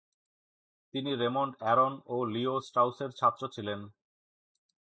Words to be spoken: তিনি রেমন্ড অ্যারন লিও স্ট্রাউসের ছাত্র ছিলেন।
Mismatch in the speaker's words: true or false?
true